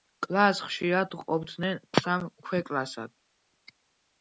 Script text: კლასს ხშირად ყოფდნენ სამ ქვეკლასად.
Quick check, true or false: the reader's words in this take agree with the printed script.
true